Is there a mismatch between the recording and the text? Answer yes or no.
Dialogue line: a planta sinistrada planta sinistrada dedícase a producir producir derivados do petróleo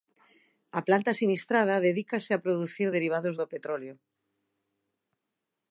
yes